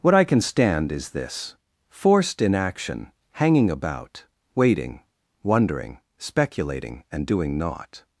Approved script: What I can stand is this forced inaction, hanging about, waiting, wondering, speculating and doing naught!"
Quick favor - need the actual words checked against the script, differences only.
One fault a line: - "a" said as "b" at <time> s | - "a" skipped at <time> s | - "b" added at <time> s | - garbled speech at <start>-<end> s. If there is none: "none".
none